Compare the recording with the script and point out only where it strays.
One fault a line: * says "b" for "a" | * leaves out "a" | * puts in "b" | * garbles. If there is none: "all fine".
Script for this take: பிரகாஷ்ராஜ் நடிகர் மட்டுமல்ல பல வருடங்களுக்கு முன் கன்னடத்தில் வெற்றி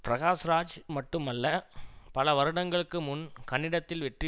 * leaves out "நடிகர்"